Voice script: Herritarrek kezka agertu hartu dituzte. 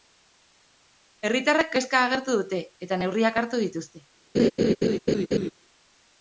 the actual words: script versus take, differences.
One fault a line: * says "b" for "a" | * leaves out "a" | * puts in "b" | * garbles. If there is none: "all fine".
* puts in "dute eta neurriak"